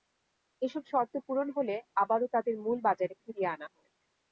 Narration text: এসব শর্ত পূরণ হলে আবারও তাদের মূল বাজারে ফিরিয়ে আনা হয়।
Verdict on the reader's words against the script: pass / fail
pass